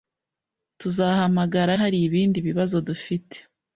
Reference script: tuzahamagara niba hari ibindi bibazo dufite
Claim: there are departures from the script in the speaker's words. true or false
true